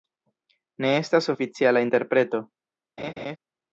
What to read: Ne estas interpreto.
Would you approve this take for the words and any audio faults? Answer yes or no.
no